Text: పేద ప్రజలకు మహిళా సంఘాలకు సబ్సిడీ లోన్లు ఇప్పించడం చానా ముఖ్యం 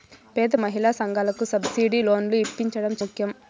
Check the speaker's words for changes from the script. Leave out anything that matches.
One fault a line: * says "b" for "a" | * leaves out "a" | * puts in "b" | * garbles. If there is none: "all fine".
* leaves out "ప్రజలకు"
* leaves out "చానా"